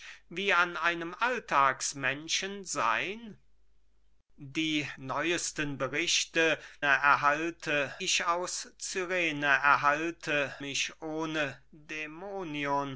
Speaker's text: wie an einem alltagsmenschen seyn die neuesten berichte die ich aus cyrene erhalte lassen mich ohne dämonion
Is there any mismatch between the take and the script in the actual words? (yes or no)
yes